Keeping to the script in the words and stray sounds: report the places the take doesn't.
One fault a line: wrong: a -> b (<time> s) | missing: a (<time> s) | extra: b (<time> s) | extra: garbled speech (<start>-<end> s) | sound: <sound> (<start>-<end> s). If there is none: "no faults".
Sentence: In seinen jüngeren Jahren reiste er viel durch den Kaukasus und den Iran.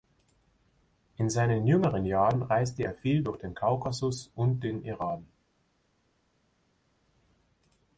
no faults